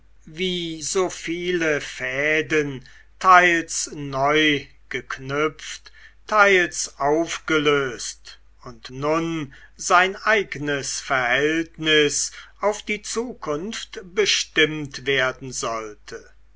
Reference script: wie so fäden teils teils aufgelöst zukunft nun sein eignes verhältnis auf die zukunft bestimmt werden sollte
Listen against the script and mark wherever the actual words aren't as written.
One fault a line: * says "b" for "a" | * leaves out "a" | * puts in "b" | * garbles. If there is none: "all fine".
* puts in "viele"
* puts in "neu geknüpft"
* says "und" for "zukunft"